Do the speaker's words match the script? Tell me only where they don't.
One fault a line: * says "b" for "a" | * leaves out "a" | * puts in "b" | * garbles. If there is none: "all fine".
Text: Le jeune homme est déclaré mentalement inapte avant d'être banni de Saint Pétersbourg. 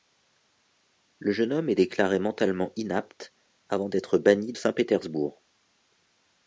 * leaves out "de"